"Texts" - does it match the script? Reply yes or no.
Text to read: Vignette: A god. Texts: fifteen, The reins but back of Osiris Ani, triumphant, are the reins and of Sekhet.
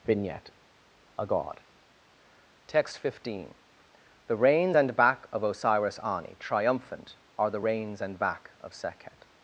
no